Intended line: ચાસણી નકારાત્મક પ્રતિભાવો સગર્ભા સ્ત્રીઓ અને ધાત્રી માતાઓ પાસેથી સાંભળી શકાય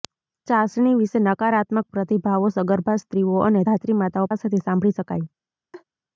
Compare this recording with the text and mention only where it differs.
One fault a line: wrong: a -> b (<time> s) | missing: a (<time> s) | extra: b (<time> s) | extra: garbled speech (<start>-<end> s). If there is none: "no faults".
extra: વિશે (1.0 s)